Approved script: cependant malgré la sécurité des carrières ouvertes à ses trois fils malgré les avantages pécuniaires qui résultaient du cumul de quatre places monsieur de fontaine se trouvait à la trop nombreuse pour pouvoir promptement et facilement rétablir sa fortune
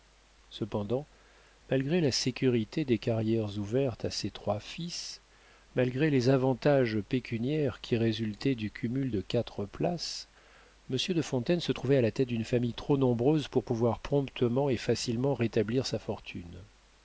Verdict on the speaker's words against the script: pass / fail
fail